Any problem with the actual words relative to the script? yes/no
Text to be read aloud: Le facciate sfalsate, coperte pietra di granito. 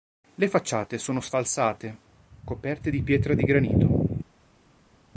yes